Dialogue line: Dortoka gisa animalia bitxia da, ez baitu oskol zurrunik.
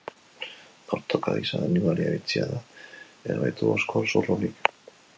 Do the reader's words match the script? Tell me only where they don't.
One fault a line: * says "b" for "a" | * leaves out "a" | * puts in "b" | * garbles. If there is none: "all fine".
all fine